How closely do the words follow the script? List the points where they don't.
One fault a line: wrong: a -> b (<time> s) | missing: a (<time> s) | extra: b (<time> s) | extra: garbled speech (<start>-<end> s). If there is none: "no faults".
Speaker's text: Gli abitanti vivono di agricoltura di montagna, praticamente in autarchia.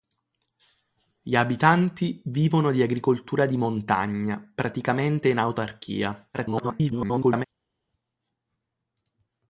extra: garbled speech (6.3-7.5 s)